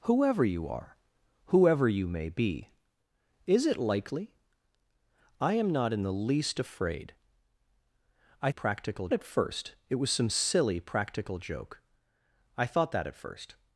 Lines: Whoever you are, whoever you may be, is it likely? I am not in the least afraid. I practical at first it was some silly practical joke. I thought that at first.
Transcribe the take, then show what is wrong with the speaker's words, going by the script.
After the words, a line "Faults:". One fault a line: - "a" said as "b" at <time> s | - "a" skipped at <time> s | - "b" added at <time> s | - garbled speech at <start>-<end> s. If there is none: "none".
Whoever you are, whoever you may be, is it likely? I am not in the least afraid. I practical at first it was some silly practical joke. I thought that at first.
Faults:
none